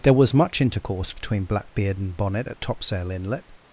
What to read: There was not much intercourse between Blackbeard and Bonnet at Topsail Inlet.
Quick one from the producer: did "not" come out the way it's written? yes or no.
no